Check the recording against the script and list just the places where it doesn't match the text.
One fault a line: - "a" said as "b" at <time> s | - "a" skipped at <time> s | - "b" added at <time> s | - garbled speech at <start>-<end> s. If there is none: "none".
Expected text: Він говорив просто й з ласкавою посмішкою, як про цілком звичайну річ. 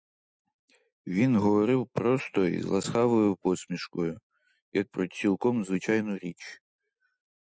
none